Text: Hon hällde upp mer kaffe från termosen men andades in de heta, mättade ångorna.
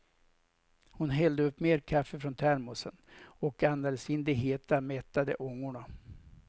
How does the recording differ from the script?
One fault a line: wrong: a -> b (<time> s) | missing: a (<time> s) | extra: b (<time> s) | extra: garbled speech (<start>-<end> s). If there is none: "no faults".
wrong: men -> och (3.2 s)